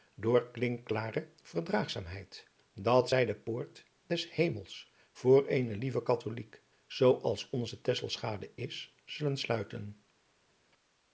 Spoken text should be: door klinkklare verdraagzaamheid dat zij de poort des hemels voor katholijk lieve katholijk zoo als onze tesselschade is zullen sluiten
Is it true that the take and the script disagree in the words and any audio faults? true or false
true